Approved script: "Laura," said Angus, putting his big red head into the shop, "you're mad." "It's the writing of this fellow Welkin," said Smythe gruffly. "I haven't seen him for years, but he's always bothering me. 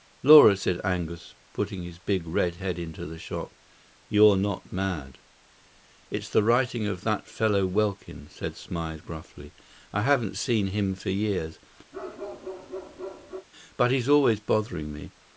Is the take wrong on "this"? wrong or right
wrong